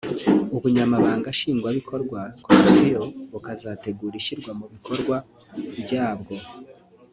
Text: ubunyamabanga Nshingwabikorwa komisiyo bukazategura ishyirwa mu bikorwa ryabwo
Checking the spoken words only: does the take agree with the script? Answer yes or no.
yes